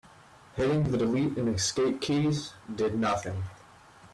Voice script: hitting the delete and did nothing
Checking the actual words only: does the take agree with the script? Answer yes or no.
no